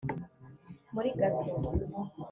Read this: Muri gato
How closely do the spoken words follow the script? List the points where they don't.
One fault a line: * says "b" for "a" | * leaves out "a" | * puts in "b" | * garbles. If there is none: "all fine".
all fine